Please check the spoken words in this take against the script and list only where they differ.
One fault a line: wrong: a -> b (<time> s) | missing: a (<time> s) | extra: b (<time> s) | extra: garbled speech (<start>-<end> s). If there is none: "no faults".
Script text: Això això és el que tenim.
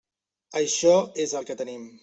missing: això (0.9 s)